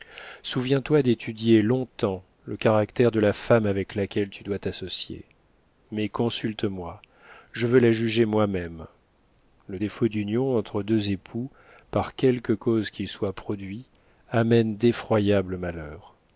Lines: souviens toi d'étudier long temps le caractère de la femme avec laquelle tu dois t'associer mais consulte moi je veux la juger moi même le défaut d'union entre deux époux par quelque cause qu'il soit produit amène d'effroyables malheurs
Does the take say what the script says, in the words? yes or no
yes